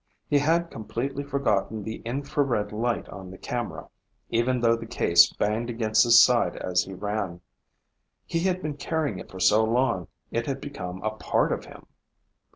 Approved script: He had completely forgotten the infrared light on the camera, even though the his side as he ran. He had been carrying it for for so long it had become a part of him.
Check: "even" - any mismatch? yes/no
no